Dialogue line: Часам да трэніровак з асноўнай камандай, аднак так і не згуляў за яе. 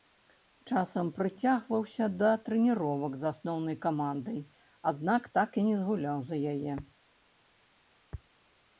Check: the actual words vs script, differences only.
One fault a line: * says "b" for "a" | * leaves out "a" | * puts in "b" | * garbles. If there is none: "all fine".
* puts in "прыцягваўся"